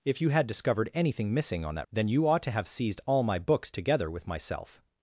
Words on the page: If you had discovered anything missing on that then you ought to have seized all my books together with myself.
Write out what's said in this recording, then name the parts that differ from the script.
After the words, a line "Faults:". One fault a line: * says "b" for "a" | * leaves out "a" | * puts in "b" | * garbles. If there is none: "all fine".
If you had discovered anything missing on that then you ought to have seized all my books together with myself.
Faults:
all fine